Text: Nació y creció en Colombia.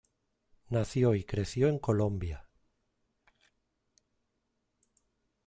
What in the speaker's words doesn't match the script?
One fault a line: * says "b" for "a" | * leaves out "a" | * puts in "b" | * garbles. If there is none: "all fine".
all fine